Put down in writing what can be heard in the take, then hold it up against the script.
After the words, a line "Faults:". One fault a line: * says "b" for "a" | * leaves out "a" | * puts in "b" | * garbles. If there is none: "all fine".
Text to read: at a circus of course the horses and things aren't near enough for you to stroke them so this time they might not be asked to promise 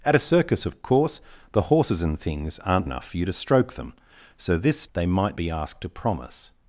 at a circus of course the horses and things aren't enough for you to stroke them so this they might be asked to promise
Faults:
* leaves out "near"
* leaves out "time"
* leaves out "not"